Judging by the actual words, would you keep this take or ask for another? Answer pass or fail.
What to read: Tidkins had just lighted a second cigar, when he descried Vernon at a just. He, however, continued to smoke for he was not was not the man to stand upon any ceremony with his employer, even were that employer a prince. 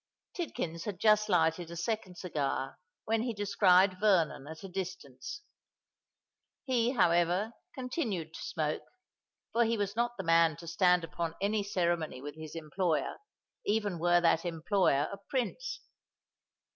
fail